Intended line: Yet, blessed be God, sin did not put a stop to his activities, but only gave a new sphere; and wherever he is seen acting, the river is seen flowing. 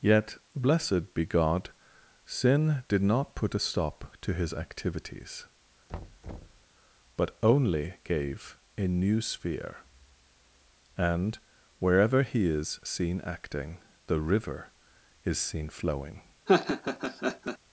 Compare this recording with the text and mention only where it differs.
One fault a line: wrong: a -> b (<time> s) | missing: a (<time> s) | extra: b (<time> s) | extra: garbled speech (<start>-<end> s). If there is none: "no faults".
no faults